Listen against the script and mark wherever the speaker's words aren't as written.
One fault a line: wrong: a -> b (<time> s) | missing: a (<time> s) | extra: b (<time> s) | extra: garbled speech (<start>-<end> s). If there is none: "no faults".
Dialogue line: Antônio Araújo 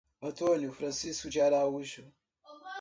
extra: Francisco de (0.7 s)